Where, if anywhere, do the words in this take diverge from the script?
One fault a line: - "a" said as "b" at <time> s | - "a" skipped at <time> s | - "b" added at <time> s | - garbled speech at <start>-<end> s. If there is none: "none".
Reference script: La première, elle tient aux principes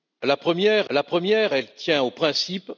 - "la première" added at 0.9 s